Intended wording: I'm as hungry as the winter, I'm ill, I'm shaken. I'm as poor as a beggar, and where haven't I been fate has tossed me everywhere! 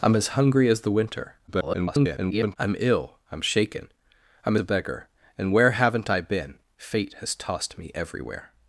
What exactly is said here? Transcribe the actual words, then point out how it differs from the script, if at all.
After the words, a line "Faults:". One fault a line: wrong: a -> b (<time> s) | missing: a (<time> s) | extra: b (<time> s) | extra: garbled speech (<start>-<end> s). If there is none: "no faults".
I'm as hungry as the winter, [garbled] I'm ill, I'm shaken. I'm a beggar, and where haven't I been fate has tossed me everywhere!
Faults:
extra: garbled speech (1.5-2.6 s)
missing: as poor as (4.5 s)